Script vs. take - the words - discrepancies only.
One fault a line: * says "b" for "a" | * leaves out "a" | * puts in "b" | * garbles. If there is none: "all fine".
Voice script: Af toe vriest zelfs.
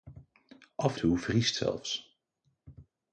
all fine